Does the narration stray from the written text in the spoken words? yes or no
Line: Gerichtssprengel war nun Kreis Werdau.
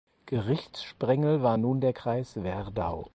yes